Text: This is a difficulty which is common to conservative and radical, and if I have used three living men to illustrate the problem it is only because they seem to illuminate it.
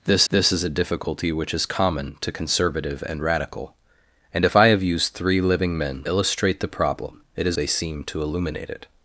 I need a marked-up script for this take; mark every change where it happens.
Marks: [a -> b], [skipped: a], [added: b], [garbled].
This [added: this] is a difficulty which is common to conservative and radical, and if I have used three living men [skipped: to] illustrate the problem it is [skipped: only because] they seem to illuminate it.